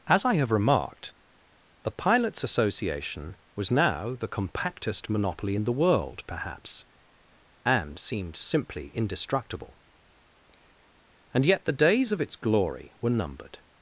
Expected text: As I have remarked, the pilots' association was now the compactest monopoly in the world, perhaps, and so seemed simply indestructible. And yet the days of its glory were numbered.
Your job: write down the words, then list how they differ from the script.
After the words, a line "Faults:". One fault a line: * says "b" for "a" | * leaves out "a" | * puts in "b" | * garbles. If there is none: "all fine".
As I have remarked, the pilots' association was now the compactest monopoly in the world, perhaps, and seemed simply indestructible. And yet the days of its glory were numbered.
Faults:
* leaves out "so"